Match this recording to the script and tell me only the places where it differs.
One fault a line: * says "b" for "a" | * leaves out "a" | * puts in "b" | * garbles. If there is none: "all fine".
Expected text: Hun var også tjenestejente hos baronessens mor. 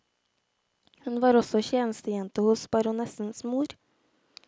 all fine